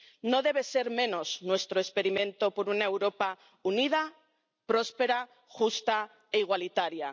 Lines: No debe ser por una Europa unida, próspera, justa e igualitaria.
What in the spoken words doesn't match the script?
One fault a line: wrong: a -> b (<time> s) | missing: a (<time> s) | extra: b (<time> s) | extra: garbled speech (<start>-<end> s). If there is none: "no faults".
extra: menos nuestro experimento (1.0 s)